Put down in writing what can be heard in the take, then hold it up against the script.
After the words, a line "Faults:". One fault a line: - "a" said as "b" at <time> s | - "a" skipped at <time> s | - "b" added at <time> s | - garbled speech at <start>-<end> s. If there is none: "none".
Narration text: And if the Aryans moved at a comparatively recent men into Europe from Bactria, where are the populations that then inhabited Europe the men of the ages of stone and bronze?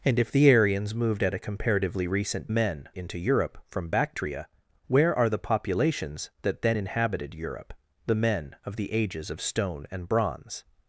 And if the Aryans moved at a comparatively recent men into Europe from Bactria, where are the populations that then inhabited Europe the men of the ages of stone and bronze?
Faults:
none